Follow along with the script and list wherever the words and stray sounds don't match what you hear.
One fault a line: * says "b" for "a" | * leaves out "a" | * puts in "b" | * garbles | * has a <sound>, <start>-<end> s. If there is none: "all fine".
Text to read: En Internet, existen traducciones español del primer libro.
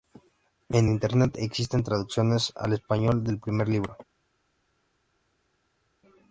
* puts in "al"